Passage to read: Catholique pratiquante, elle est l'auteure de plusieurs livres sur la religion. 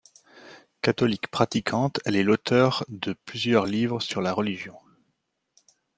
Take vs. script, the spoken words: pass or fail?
pass